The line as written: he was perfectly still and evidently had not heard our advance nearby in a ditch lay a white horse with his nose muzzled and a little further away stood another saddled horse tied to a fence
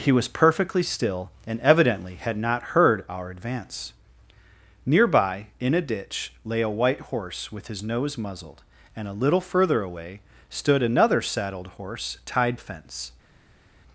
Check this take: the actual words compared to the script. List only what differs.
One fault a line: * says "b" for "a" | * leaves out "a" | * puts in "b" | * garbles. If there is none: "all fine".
* leaves out "to"